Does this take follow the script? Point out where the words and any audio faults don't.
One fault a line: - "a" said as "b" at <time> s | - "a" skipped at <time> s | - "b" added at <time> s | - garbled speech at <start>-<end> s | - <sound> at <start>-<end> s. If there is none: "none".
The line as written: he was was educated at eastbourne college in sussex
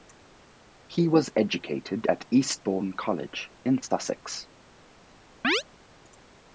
- "was" skipped at 1.3 s
- chirp at 5.4-5.6 s